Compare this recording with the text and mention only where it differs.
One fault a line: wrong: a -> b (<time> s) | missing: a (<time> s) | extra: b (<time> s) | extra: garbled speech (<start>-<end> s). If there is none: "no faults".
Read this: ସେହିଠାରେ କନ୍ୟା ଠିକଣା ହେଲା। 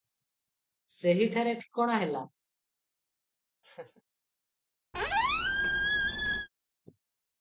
missing: କନ୍ୟା (1.5 s)